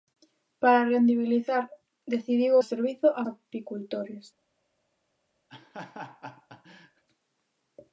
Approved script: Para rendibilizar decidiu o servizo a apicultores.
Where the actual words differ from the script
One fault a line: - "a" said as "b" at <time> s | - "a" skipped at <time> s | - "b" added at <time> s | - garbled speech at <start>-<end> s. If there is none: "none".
none